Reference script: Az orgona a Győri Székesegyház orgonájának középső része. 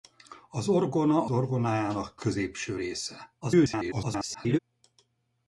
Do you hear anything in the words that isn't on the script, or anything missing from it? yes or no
yes